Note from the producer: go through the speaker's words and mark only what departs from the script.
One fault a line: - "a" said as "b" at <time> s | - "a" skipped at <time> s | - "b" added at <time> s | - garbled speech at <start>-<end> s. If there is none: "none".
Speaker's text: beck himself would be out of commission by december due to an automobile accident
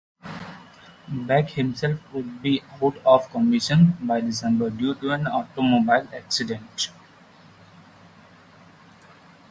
none